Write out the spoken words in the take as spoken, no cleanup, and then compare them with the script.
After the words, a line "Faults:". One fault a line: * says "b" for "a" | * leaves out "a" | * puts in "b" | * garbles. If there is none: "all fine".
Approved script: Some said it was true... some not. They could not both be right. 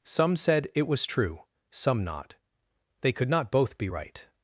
Some said it was true... some not. They could not both be right.
Faults:
all fine